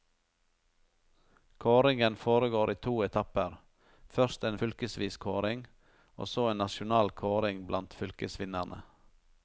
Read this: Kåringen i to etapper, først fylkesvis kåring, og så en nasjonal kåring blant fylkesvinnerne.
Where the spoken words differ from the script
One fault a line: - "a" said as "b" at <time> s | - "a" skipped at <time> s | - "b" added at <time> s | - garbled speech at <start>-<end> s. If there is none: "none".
- "foregår" added at 2.1 s
- "en" added at 4.4 s